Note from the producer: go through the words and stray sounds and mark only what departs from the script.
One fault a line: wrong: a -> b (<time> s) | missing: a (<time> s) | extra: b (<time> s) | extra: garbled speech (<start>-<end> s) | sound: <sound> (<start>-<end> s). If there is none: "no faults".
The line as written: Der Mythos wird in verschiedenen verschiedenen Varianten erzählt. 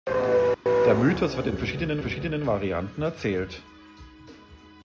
sound: dropout (0.5-0.7 s)